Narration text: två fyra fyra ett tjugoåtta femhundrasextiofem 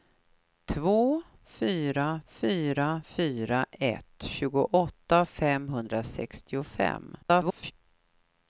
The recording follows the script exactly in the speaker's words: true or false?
false